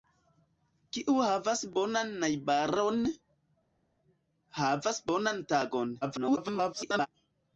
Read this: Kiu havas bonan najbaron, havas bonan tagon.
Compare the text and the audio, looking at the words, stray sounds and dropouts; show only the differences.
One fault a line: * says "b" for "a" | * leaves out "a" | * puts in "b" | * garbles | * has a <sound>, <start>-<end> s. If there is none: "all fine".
* garbles